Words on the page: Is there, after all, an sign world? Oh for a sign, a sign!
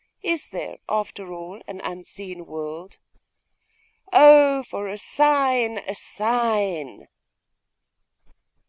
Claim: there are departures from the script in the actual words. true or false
true